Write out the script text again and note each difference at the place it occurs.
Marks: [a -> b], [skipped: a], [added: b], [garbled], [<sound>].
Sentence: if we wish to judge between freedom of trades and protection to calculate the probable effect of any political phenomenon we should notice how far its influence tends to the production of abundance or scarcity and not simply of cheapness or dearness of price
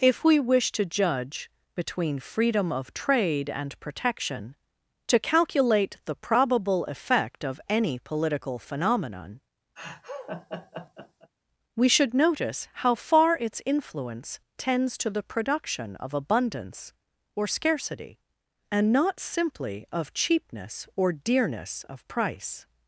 if we wish to judge between freedom of [trades -> trade] and protection to calculate the probable effect of any political phenomenon [laugh] we should notice how far its influence tends to the production of abundance or scarcity and not simply of cheapness or dearness of price